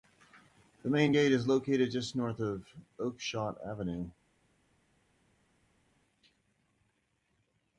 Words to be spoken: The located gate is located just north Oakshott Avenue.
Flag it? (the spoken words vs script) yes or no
yes